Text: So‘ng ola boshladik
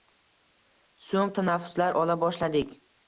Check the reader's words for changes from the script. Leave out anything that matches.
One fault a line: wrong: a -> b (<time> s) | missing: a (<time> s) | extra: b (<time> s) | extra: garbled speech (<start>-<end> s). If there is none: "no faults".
extra: tanaffuslar (1.4 s)